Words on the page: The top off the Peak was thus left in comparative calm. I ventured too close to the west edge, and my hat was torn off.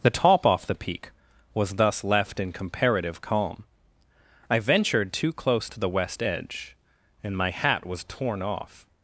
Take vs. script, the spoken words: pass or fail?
pass